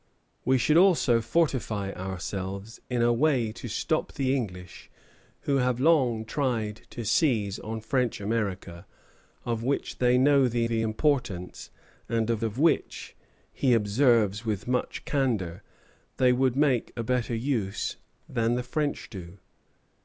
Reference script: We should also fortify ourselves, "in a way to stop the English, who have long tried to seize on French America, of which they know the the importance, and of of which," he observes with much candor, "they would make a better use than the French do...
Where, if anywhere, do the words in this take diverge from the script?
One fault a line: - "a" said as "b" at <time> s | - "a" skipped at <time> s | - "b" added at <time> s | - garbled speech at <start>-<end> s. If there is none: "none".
none